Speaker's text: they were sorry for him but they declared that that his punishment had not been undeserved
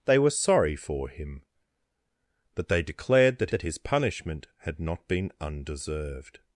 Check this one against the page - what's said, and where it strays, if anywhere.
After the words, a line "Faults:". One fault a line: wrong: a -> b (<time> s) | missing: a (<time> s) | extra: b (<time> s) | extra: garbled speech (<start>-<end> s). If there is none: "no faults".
they were sorry for him but they declared that that his punishment had not been undeserved
Faults:
no faults